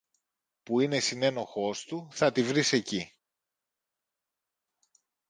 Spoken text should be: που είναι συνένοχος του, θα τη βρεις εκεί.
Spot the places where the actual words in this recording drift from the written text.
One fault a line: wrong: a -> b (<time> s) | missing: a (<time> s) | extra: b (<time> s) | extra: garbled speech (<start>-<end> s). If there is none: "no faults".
no faults